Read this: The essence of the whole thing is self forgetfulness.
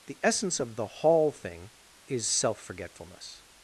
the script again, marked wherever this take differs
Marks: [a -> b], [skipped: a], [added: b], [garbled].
The essence of the [whole -> hall] thing is self forgetfulness.